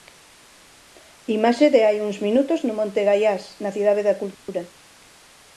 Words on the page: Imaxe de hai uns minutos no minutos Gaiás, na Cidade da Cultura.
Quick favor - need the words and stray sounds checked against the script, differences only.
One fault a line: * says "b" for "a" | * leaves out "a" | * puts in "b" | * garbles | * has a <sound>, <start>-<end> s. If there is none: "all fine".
* says "monte" for "minutos"
* has a dropout, 4.3-4.5 s